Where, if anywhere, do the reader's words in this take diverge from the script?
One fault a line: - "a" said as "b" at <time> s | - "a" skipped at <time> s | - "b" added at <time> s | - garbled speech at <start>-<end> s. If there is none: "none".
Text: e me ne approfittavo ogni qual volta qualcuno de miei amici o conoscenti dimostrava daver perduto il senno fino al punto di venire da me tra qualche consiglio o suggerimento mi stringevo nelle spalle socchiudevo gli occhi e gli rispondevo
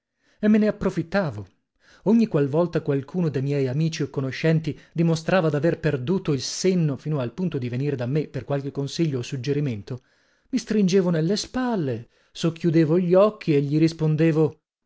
- "tra" said as "per" at 8.3 s